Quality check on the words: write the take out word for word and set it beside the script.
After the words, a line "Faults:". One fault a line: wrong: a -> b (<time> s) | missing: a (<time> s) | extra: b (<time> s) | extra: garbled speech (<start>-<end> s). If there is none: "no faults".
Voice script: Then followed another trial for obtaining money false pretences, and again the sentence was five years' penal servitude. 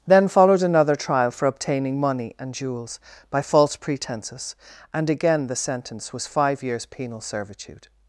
Then followed another trial for obtaining money and jewels by false pretences, and again the sentence was five years' penal servitude.
Faults:
extra: and jewels by (2.4 s)